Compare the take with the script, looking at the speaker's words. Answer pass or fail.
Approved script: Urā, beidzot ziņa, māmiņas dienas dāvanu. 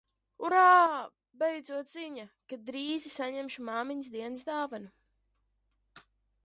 fail